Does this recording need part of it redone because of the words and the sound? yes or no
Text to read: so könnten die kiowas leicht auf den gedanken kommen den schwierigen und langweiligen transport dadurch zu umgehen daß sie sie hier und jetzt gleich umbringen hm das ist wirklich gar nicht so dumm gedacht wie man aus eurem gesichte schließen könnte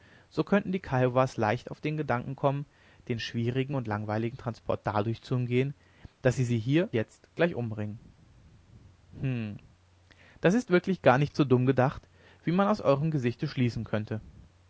yes